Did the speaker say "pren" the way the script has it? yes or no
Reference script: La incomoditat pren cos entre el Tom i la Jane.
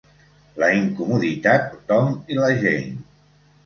no